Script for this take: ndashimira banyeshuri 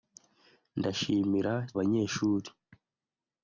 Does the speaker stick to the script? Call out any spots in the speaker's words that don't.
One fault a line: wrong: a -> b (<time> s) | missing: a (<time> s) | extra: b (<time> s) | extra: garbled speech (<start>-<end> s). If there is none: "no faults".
no faults